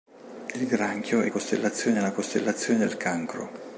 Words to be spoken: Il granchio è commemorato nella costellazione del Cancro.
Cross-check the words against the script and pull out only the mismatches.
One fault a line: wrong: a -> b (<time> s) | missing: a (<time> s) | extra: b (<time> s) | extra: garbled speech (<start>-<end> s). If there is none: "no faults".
wrong: commemorato -> costellazione (1.3 s)